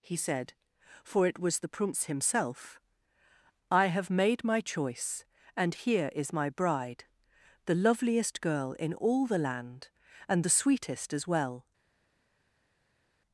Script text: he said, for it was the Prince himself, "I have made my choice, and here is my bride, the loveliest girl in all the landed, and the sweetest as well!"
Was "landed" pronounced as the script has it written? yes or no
no